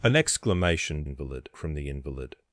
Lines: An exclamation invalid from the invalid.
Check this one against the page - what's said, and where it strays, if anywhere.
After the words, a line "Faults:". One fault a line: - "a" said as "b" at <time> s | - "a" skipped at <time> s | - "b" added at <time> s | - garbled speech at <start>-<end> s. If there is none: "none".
An exclamation invalid from the invalid.
Faults:
none